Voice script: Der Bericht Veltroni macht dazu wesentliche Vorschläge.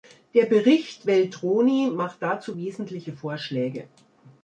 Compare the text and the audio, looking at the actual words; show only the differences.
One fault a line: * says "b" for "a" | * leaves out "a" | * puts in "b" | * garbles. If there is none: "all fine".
all fine